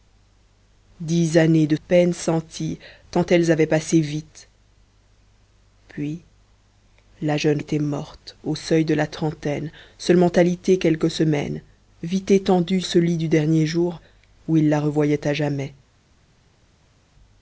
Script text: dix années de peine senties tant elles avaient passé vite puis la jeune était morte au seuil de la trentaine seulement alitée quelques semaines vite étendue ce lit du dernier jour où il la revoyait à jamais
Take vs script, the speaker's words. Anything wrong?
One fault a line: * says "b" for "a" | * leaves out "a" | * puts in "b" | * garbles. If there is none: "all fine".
all fine